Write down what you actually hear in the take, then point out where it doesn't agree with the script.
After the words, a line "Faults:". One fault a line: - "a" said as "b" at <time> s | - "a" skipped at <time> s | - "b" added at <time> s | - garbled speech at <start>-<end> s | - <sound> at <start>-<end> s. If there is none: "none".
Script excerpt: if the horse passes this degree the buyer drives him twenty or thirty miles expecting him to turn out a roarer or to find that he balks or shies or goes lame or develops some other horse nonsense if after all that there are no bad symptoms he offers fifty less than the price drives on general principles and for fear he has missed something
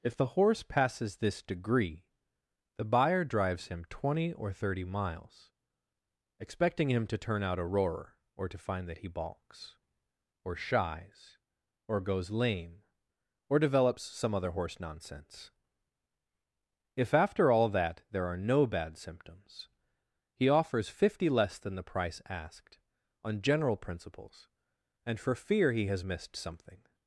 if the horse passes this degree the buyer drives him twenty or thirty miles expecting him to turn out a roarer or to find that he balks or shies or goes lame or develops some other horse nonsense if after all that there are no bad symptoms he offers fifty less than the price asked on general principles and for fear he has missed something
Faults:
- "drives" said as "asked" at 22.3 s